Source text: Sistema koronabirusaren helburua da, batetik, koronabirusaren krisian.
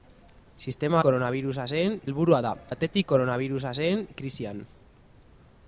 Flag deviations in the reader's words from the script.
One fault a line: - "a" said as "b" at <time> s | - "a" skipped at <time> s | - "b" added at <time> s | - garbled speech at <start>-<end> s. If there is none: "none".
none